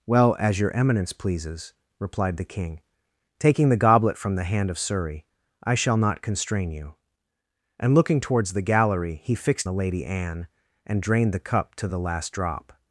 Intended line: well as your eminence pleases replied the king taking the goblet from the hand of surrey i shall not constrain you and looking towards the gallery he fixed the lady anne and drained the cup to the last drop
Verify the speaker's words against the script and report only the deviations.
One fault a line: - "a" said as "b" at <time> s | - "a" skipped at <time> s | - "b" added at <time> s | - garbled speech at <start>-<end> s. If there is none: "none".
none